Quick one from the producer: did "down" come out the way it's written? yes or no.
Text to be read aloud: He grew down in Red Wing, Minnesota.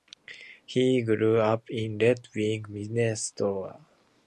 no